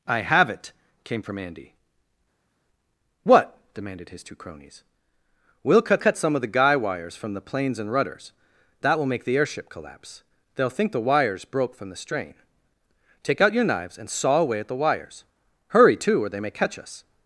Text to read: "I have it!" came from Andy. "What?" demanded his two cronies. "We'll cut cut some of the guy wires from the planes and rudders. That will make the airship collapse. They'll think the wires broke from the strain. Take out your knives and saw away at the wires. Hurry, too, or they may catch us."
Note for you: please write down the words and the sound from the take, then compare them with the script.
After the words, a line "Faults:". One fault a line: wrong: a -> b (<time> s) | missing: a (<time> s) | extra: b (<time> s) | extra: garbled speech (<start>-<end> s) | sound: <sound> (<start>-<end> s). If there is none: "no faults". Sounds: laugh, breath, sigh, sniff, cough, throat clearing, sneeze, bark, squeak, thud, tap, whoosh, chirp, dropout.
"I have it!" came from Andy. "What?" demanded his two cronies. "We'll cut cut some of the guy wires from the planes and rudders. That will make the airship collapse. They'll think the wires broke from the strain. Take out your knives and saw away at the wires. Hurry, too, or they may catch us."
Faults:
no faults